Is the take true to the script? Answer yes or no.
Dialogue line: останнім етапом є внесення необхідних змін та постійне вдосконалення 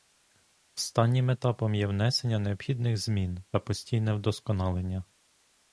yes